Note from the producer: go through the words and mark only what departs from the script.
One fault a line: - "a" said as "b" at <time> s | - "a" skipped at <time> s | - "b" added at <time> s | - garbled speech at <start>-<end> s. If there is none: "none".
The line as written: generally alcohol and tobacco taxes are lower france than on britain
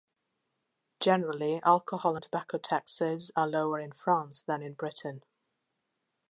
- "in" added at 3.8 s
- "on" said as "in" at 4.6 s